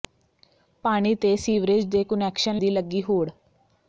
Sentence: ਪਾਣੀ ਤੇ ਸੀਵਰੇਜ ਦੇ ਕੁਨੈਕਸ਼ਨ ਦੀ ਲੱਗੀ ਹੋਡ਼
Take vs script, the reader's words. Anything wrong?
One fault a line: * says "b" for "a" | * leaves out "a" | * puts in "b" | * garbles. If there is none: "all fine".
all fine